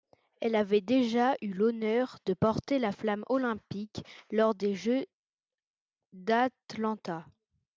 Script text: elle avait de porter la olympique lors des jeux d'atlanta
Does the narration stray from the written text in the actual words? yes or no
yes